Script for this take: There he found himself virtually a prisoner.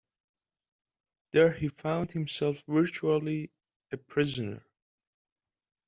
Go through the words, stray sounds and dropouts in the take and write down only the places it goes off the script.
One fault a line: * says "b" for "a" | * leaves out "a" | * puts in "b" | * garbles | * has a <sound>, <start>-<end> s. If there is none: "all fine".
all fine